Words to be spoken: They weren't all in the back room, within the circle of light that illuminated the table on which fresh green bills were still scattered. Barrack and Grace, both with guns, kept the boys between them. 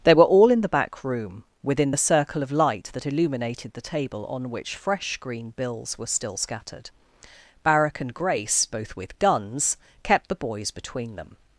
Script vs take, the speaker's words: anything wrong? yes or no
yes